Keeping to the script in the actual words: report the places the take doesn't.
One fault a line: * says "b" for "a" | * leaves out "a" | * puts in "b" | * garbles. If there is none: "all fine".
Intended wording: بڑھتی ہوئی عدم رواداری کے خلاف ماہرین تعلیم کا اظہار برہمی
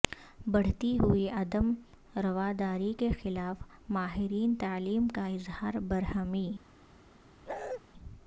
all fine